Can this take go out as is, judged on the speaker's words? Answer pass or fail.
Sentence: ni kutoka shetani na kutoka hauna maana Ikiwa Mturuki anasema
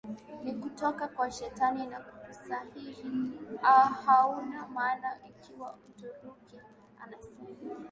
fail